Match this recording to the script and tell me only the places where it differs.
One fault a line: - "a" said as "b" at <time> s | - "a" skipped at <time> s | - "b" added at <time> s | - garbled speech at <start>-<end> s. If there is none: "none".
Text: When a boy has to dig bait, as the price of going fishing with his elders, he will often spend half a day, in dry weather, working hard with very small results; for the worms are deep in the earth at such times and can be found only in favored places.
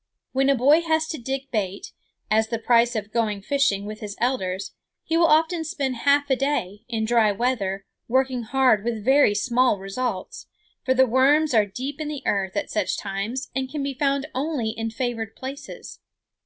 none